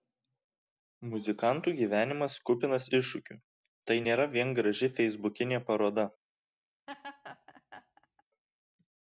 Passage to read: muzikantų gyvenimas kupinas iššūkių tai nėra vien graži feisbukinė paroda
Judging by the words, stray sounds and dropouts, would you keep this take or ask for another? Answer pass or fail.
fail